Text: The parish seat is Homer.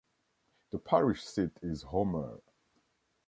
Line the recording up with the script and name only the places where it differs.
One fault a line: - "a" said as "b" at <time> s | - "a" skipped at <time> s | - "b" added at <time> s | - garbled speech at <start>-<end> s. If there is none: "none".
none